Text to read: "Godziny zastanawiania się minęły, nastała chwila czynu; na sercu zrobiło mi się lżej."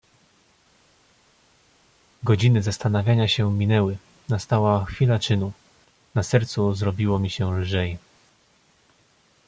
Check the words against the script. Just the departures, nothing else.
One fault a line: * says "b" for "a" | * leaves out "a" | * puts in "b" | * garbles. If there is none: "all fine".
all fine